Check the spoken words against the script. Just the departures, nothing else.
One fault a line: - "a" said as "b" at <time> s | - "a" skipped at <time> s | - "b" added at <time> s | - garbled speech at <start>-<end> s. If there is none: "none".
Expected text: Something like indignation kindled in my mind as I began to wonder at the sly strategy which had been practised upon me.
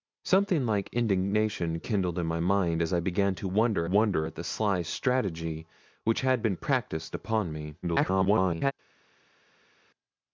- "wonder" added at 3.8 s
- garbled speech at 7.8-8.7 s